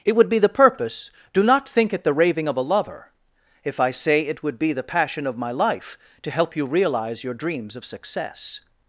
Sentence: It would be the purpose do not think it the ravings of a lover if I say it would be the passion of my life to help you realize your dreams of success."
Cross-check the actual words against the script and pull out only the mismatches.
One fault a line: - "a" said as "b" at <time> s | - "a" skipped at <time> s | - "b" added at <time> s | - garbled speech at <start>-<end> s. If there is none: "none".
- "ravings" said as "raving" at 2.1 s